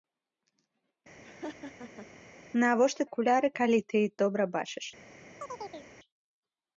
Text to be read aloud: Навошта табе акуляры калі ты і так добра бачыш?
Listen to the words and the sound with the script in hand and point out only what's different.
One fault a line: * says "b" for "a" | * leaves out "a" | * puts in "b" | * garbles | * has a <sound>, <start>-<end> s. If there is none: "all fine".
* has a laugh, 1.2-2.1 s
* leaves out "табе"
* leaves out "так"
* has a chirp, 5.4-5.9 s